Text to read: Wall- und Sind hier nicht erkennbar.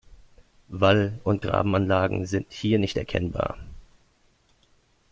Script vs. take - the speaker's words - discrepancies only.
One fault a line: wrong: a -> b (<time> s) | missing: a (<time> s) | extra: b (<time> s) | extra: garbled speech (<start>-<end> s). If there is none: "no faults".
extra: Grabenanlagen (1.4 s)